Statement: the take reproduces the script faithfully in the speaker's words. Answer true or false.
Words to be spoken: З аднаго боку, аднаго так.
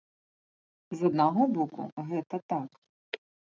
false